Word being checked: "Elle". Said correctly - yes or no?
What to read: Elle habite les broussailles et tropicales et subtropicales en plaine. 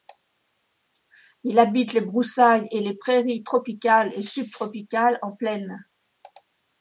no